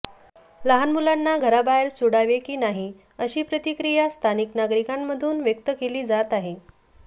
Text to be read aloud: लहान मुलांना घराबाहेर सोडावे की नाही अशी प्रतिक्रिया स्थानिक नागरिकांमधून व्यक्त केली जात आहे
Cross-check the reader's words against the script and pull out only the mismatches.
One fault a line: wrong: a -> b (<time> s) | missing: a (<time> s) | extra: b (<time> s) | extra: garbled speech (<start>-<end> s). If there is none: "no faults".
no faults